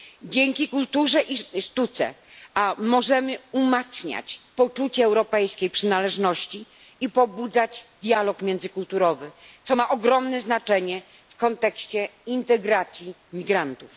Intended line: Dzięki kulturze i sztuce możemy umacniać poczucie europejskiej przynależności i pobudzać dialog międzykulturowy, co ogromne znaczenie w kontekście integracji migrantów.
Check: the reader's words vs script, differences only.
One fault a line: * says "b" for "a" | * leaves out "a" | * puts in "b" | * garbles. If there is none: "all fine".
* puts in "ma"